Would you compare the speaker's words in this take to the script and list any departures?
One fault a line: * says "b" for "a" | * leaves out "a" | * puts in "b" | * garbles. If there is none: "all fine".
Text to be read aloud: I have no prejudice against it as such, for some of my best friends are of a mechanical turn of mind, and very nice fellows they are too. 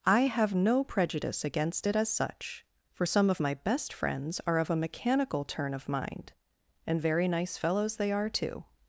all fine